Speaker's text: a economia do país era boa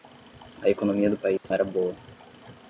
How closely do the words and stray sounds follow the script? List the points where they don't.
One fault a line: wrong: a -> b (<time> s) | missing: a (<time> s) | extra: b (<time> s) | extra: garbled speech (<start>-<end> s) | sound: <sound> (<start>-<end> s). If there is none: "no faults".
sound: dropout (1.4-1.4 s)